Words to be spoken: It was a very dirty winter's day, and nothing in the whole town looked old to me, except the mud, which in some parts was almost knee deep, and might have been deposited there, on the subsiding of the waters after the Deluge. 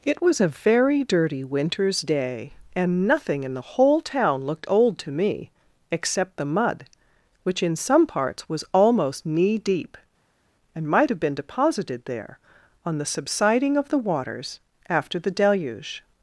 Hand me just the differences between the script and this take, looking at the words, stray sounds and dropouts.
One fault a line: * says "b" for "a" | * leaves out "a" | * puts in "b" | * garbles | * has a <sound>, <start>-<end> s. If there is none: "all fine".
all fine